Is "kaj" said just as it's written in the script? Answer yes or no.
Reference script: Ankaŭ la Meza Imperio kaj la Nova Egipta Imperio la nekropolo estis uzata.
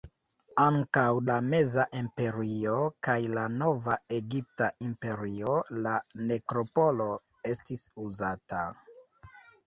yes